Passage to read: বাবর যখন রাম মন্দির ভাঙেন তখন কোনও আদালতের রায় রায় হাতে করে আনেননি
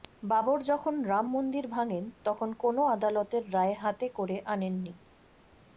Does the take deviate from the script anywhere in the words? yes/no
yes